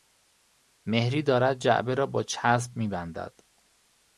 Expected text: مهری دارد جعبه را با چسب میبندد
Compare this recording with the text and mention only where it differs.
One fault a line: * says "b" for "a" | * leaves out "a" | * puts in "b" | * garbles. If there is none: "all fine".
all fine